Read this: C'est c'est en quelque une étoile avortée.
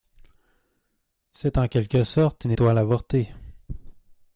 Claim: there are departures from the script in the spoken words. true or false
true